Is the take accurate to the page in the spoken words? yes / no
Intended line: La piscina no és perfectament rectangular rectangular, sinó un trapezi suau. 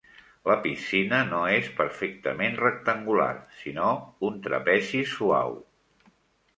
no